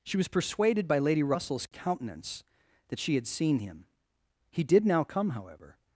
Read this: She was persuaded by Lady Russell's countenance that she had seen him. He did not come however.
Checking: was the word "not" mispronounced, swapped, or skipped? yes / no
yes